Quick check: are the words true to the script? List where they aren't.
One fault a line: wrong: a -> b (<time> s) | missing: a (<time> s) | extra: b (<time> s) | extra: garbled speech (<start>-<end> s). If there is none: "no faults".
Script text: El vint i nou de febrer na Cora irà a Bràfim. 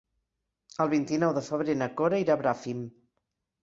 no faults